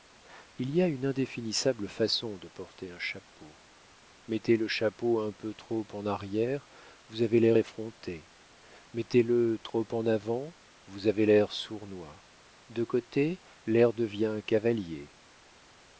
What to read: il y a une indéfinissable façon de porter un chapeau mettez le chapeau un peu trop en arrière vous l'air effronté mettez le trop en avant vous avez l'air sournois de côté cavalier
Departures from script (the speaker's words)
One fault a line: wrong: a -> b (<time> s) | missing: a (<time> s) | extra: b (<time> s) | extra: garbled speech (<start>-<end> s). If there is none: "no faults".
extra: avez (7.2 s)
extra: l'air devient (13.7 s)